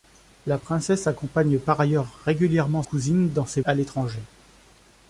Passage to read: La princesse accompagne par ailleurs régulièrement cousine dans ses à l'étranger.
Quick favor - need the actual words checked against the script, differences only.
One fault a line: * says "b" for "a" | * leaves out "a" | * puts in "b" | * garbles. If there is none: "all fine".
all fine